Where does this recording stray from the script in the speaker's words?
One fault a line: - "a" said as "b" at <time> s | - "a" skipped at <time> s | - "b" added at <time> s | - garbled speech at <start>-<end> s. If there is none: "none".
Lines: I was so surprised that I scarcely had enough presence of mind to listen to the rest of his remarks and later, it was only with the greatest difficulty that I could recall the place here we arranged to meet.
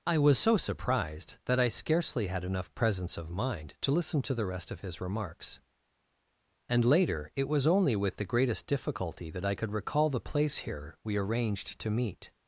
none